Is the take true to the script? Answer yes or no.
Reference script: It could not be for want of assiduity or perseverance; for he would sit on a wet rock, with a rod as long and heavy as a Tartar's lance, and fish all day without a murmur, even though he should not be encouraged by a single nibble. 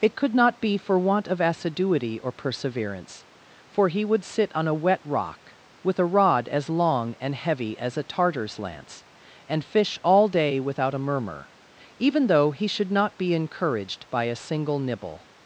yes